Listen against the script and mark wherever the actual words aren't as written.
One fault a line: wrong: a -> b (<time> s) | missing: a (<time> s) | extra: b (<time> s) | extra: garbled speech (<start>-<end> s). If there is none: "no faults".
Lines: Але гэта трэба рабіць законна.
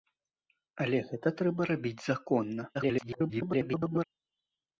extra: garbled speech (2.7-4.0 s)